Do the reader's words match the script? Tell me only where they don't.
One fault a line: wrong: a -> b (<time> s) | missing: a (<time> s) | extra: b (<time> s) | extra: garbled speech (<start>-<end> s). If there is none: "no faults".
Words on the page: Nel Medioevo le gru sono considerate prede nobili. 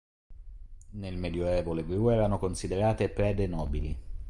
wrong: sono -> erano (2.1 s)